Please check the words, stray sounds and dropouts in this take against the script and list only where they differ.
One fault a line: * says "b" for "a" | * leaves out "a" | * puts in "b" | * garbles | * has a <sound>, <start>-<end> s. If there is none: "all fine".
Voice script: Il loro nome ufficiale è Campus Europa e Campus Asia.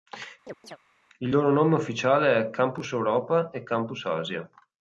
* has a chirp, 0.5-0.8 s